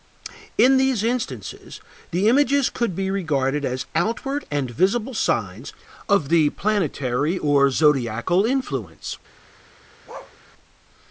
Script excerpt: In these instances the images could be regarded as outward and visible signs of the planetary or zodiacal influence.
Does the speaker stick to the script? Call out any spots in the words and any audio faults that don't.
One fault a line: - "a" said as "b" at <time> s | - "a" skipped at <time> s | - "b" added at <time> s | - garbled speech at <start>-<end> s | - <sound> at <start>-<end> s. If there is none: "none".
- bark at 10.1-10.4 s